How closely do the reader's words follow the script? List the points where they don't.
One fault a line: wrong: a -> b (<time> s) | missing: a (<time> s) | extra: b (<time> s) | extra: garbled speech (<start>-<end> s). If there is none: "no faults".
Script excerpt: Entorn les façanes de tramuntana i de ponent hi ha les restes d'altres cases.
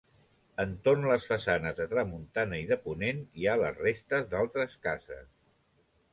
no faults